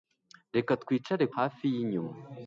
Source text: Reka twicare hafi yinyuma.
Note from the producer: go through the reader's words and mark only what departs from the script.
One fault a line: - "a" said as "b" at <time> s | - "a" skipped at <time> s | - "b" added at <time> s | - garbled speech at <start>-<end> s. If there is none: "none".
none